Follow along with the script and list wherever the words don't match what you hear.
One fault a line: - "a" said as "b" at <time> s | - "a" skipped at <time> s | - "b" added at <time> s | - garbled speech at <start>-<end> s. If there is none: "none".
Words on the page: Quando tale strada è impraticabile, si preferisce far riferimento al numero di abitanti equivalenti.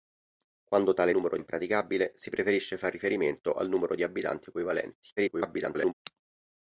- "strada" said as "numero" at 1.1 s
- garbled speech at 5.2-5.9 s